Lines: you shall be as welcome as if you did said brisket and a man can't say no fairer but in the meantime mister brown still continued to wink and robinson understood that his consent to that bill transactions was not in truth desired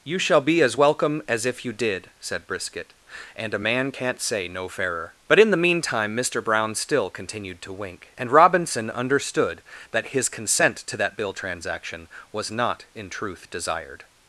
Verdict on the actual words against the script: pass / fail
fail